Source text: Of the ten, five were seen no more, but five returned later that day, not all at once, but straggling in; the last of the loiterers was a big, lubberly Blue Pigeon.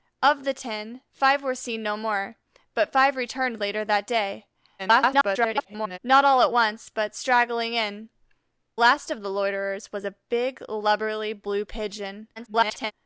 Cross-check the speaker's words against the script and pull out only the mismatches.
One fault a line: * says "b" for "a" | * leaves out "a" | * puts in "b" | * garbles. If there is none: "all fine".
* garbles
* leaves out "the"
* garbles